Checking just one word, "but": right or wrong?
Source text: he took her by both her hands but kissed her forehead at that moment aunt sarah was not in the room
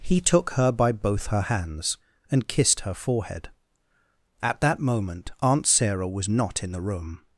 wrong